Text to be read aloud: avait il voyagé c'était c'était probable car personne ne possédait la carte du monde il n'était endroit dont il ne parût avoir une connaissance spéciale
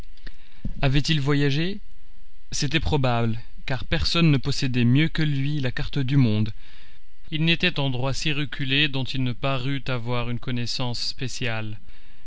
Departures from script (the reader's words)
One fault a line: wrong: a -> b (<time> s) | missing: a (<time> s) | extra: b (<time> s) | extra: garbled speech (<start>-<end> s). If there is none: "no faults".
missing: c'était (2.8 s)
extra: mieux que lui (4.8 s)
extra: si reculé (8.2 s)